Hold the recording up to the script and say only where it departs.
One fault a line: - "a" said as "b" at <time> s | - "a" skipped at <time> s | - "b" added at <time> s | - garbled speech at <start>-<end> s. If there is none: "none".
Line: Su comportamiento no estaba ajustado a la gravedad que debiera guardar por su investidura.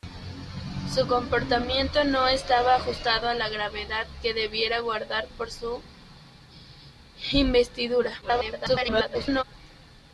- garbled speech at 8.2-9.4 s